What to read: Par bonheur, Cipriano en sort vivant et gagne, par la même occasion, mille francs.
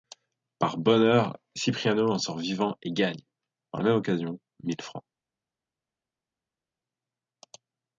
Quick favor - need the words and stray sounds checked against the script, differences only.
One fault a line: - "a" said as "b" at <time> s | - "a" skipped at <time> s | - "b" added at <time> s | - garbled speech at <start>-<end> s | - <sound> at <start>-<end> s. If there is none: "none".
none